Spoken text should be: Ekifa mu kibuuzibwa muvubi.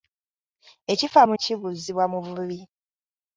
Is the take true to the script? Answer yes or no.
yes